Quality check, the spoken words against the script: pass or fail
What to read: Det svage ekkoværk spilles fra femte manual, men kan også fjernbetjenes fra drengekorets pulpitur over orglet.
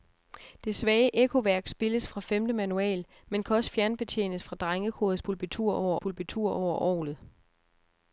fail